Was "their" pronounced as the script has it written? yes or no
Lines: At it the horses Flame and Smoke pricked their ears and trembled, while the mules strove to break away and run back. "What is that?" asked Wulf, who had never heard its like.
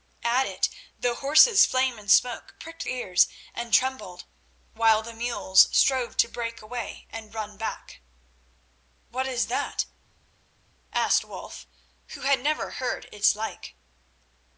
no